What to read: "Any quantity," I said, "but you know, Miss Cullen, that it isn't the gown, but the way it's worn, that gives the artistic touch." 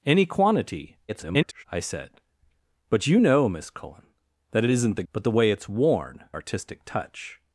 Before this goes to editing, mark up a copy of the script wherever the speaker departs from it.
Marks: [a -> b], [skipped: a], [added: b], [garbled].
"Any quantity," [garbled] I said, "but you know, Miss Cullen, that it isn't the [skipped: gown,] but the way it's worn, [skipped: that gives the] artistic touch."